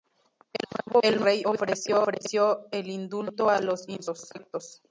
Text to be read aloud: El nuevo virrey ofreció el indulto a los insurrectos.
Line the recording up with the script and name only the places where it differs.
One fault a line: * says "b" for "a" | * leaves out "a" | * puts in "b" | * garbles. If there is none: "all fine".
all fine